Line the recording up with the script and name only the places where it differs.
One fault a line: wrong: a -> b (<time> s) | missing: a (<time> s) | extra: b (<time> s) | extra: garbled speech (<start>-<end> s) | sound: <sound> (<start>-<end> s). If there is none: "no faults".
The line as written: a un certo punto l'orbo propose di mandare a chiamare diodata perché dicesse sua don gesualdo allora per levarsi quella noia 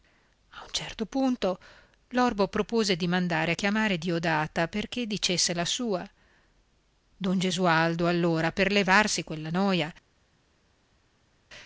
extra: la (5.5 s)